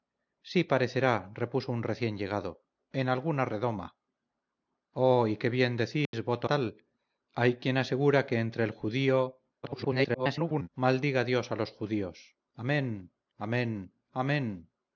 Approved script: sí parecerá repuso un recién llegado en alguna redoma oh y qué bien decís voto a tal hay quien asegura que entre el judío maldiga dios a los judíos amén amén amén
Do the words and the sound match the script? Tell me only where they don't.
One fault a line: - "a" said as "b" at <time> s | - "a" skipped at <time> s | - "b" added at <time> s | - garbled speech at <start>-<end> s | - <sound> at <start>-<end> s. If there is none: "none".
- dropout at 6.1-6.1 s
- "a" skipped at 6.5 s
- garbled speech at 9.6-10.7 s